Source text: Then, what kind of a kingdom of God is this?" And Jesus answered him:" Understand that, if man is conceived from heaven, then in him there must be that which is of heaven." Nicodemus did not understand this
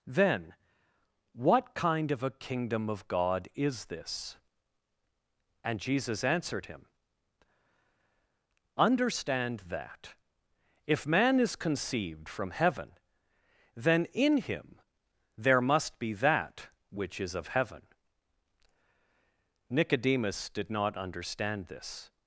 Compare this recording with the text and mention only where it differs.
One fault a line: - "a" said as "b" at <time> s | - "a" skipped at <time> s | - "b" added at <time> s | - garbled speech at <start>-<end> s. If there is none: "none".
none